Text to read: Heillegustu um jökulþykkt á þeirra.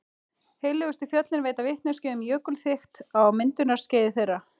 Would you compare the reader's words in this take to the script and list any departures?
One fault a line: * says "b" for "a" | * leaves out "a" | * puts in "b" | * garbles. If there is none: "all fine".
* puts in "fjöllin veita vitneskju"
* puts in "myndunarskeiði"